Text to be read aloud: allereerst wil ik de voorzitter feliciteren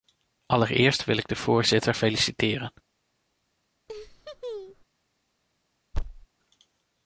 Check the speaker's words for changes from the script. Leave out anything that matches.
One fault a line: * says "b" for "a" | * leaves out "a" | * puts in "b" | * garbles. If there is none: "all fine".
all fine